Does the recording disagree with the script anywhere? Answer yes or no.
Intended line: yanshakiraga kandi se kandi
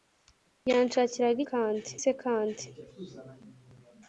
no